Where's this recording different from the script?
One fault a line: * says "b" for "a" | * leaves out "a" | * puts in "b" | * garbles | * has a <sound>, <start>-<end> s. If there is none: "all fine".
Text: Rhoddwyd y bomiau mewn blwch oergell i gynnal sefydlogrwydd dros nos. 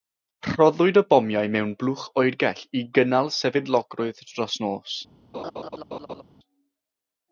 * has a laugh, 5.3-6.2 s